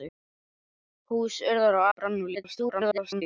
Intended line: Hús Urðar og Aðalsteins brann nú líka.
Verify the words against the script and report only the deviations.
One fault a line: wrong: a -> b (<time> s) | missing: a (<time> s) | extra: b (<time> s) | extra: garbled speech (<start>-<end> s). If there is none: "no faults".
missing: Aðalsteins (1.9 s)
extra: garbled speech (2.3-3.2 s)